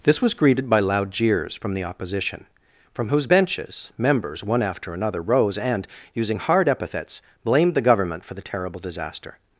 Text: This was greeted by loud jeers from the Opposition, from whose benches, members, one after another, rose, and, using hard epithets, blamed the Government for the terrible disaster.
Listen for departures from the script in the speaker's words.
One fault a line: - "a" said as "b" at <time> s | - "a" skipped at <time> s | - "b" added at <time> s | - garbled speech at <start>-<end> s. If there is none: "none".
none